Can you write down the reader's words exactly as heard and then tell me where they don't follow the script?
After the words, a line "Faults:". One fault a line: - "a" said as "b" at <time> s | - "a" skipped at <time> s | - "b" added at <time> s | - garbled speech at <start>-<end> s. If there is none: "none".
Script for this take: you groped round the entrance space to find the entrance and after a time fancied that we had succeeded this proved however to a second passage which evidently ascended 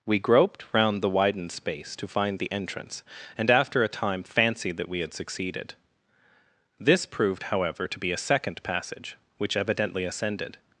we groped round the widened space to find the entrance and after a time fancied that we had succeeded this proved however to be a second passage which evidently ascended
Faults:
- "you" said as "we" at 0.1 s
- "entrance" said as "widened" at 1.1 s
- "be" added at 8.0 s